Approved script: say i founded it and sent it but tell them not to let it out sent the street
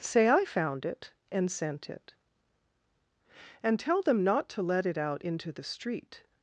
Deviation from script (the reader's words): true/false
true